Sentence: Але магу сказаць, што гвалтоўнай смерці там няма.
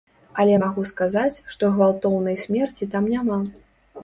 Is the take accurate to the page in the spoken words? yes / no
yes